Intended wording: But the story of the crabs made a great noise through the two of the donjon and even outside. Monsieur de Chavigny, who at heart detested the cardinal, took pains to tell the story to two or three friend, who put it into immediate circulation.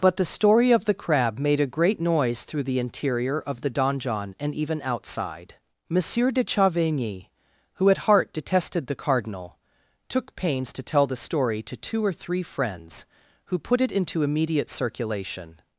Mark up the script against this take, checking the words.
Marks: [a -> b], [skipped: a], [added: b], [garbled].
But the story of the [crabs -> crab] made a great noise through the [two -> interior] of the donjon and even outside. Monsieur de Chavigny, who at heart detested the cardinal, took pains to tell the story to two or three [friend, -> friends] who put it into immediate circulation.